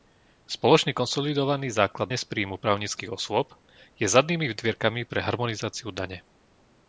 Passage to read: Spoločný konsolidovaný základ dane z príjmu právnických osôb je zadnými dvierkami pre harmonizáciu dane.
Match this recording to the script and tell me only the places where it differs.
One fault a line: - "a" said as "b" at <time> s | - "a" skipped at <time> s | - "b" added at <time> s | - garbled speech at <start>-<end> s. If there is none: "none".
- "dane" skipped at 2.1 s